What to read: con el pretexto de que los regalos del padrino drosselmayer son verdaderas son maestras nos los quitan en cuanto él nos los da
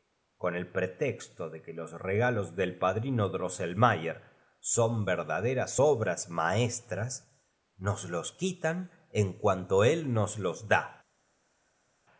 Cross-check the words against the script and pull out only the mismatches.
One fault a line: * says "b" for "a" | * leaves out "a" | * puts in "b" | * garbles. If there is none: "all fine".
* says "obras" for "son"